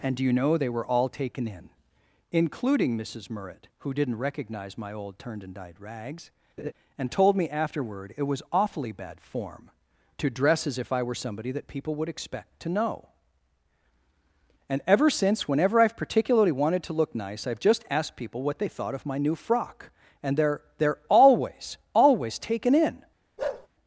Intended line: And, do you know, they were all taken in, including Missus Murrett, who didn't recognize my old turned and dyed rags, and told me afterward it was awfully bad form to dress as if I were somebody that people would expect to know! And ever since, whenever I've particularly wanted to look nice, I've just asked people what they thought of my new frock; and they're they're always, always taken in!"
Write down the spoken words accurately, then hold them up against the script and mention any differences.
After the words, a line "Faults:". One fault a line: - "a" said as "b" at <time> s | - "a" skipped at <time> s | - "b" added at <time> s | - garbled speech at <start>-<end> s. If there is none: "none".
And, do you know, they were all taken in, including Missus Murrett, who didn't recognize my old turned and dyed rags, and told me afterward it was awfully bad form to dress as if I were somebody that people would expect to know! And ever since, whenever I've particularly wanted to look nice, I've just asked people what they thought of my new frock; and they're they're always, always taken in!"
Faults:
none